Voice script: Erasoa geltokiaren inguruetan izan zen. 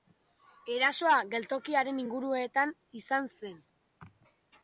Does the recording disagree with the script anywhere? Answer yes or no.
no